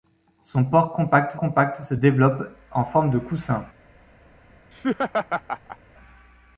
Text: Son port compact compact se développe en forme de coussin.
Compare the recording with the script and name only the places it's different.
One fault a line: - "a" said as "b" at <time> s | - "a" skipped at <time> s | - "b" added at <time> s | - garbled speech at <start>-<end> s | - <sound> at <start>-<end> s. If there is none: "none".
- laugh at 4.7-5.8 s